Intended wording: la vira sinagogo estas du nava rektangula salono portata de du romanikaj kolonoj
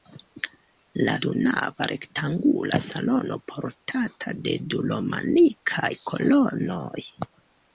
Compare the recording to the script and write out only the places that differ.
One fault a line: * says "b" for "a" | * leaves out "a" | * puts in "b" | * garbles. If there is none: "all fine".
* leaves out "vira sinagogo estas"